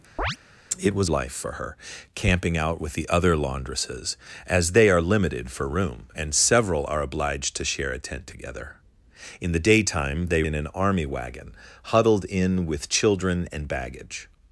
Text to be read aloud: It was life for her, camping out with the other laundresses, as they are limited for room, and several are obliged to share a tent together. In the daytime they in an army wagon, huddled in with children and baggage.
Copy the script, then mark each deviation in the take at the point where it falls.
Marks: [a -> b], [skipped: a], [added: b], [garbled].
It was life for her, camping out with the other laundresses, as they are limited for room, and several are obliged to share a tent together. In the daytime they in an army wagon, huddled in with children and baggage.